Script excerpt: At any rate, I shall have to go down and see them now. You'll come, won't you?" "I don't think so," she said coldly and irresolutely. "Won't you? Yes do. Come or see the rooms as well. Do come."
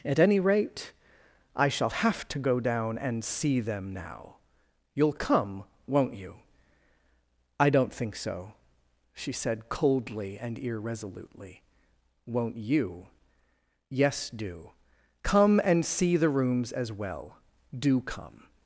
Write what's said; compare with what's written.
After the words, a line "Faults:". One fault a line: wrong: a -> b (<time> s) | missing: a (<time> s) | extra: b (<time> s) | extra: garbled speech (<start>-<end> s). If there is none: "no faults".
At any rate, I shall have to go down and see them now. You'll come, won't you?" "I don't think so," she said coldly and irresolutely. "Won't you? Yes do. Come and see the rooms as well. Do come."
Faults:
wrong: or -> and (15.6 s)